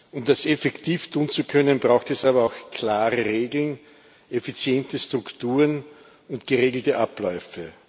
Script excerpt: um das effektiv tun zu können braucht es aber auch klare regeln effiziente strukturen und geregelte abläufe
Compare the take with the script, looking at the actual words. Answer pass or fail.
pass